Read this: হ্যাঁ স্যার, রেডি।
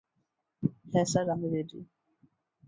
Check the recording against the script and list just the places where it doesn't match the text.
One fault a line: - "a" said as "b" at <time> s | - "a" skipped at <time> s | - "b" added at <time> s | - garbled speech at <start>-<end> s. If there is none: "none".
- "আমি" added at 1.3 s